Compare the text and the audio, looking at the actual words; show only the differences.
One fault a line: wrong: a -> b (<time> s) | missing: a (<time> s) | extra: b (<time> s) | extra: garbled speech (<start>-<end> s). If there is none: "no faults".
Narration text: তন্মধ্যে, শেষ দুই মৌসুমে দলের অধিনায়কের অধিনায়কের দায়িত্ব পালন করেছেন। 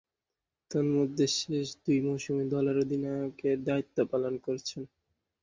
missing: অধিনায়কের (3.6 s)